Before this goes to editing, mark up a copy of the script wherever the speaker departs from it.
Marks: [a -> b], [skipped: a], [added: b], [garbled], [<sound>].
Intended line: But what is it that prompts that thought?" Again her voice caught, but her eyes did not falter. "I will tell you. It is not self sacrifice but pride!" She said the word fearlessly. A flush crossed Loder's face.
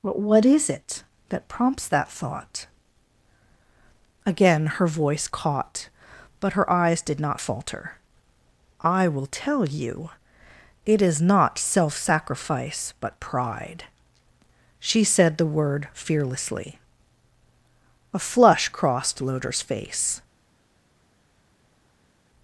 But what is it that prompts that thought?" Again her voice caught, but her eyes did not falter. "I will tell you. It is not self sacrifice but pride!" She said the word fearlessly. A flush crossed Loder's face.